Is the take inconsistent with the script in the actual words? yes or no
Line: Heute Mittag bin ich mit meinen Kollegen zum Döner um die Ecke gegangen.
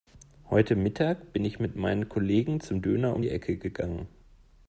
no